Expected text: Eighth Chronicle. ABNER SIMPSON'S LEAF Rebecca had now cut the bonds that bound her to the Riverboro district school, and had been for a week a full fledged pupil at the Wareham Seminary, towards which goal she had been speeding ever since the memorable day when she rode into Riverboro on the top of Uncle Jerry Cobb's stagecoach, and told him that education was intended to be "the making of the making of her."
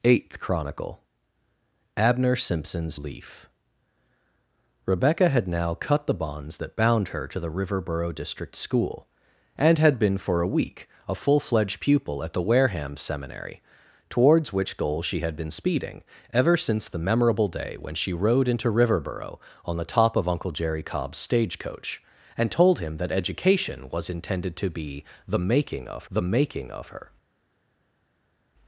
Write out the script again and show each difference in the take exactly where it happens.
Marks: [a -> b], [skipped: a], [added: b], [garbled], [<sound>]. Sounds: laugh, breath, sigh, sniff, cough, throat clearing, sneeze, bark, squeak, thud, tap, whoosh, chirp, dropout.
Eighth Chronicle. ABNER SIMPSON'S LEAF Rebecca had now cut the bonds that bound her to the Riverboro district school, and had been for a week a full fledged pupil at the Wareham Seminary, towards which goal she had been speeding ever since the memorable day when she rode into Riverboro on the top of Uncle Jerry Cobb's stagecoach, and told him that education was intended to be "the making of the making of her."